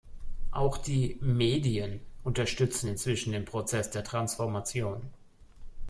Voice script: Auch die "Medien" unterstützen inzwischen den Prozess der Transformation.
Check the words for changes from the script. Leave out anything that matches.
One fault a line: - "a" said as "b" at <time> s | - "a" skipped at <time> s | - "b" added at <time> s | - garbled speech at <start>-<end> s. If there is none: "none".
none